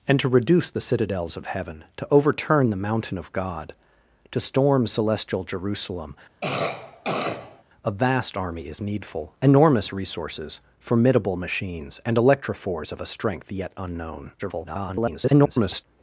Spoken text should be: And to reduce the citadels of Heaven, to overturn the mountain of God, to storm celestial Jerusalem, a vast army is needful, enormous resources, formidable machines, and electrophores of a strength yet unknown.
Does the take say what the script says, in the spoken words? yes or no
no